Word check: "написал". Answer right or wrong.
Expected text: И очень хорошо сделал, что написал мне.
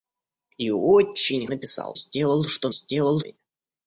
wrong